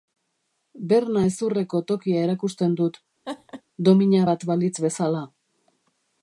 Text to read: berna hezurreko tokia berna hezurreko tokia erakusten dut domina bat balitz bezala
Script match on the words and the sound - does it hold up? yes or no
no